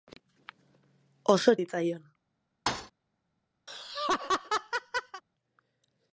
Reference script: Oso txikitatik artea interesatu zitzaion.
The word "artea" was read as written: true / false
false